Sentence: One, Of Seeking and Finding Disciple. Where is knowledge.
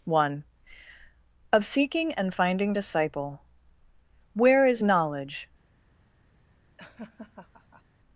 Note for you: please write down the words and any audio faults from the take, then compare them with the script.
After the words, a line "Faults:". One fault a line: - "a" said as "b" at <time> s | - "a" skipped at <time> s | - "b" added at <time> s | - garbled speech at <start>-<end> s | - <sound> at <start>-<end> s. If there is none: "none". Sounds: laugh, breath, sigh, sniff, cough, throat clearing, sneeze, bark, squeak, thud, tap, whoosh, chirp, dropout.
One, Of Seeking and Finding Disciple. Where is knowledge.
Faults:
- laugh at 6.8-7.8 s